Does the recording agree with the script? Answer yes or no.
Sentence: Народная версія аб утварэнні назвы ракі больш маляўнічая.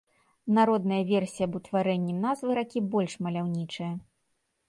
yes